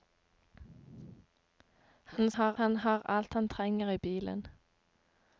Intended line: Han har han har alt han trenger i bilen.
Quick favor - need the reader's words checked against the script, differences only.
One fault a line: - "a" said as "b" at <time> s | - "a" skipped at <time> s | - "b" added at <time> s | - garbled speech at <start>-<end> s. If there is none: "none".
none